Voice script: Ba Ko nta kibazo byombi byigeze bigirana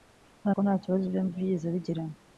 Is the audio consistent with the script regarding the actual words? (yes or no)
yes